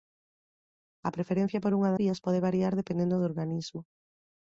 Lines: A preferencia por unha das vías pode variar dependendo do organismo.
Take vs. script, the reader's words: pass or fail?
fail